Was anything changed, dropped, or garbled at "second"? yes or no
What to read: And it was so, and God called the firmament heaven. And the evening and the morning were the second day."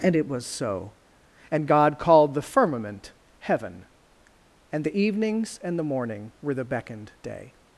yes